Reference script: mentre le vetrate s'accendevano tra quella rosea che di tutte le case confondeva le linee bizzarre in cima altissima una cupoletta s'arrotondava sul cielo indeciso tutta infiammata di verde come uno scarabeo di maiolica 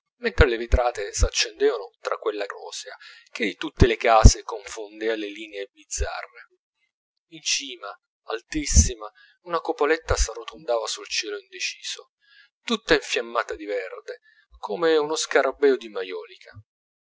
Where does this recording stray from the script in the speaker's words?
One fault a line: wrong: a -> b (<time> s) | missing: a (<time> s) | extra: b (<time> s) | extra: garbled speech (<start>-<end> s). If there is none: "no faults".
no faults